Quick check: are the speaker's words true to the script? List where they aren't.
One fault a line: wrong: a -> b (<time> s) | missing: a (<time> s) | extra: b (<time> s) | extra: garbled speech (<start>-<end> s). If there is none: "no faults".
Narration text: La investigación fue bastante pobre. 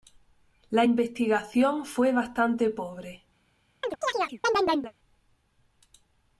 no faults